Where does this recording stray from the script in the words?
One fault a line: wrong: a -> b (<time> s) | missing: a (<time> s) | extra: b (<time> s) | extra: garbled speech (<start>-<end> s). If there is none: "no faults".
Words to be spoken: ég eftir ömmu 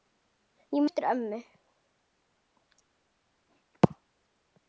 no faults